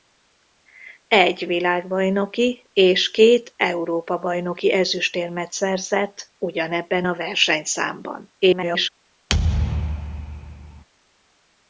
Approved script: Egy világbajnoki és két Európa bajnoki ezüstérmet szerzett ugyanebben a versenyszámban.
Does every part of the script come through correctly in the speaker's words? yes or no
no